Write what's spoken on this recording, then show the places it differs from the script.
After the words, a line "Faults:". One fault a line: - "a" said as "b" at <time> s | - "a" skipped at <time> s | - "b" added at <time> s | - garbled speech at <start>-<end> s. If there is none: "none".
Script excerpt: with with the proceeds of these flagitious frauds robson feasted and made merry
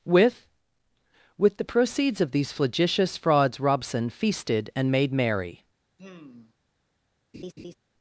with with the proceeds of these flagitious frauds robson feasted and made merry
Faults:
none